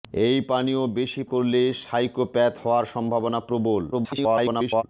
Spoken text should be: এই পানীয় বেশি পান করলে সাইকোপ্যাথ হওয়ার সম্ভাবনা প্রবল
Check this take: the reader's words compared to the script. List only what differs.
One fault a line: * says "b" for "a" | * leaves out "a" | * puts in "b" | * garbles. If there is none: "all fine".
* leaves out "পান"
* garbles